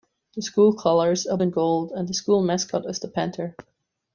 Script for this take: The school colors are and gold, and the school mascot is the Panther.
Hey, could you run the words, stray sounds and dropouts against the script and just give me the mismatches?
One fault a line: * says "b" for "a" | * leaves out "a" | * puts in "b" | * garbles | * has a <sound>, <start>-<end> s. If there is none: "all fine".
all fine